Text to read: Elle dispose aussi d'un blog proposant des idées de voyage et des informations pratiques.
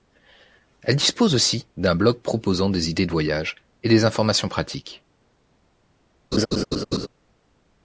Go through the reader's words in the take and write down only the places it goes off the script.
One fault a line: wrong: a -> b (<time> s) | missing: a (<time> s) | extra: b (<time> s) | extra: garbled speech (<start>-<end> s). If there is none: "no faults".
no faults